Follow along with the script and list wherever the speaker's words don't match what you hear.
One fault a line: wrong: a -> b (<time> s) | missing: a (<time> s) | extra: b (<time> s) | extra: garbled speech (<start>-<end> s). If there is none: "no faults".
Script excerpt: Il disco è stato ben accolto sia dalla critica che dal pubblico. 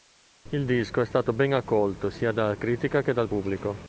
no faults